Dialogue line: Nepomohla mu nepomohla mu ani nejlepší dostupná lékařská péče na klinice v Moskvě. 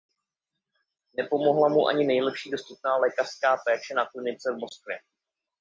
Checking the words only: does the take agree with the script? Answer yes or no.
no